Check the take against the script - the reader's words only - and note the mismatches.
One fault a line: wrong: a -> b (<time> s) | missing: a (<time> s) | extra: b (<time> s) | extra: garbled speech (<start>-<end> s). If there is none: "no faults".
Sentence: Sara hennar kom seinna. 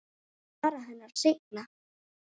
missing: kom (1.1 s)